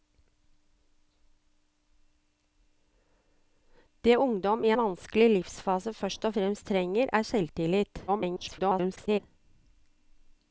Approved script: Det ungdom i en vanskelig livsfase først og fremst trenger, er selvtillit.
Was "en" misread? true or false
true